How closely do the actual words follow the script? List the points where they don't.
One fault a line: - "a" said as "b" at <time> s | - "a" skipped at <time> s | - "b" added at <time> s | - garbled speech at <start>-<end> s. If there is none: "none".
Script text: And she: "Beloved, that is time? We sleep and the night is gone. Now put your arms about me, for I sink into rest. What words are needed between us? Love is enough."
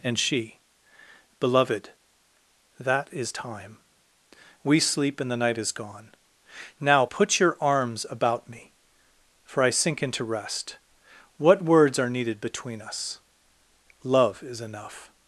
none